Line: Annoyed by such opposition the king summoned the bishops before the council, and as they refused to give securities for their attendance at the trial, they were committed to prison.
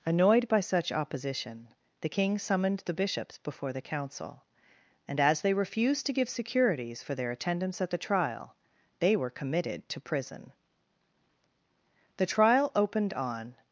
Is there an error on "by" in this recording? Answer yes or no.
no